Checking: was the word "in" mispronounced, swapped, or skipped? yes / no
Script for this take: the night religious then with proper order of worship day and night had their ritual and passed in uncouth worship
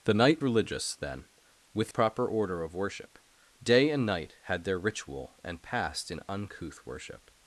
no